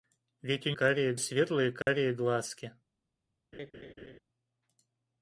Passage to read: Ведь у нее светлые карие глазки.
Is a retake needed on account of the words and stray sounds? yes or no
yes